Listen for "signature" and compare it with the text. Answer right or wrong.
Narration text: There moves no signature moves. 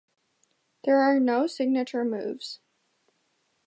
right